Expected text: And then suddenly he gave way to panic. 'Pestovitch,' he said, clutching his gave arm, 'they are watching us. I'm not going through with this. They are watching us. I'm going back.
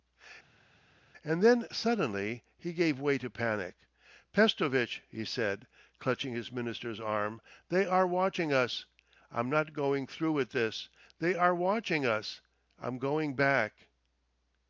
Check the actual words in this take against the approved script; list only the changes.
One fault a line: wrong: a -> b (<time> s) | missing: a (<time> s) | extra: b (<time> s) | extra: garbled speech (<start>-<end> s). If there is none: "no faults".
wrong: gave -> minister's (6.5 s)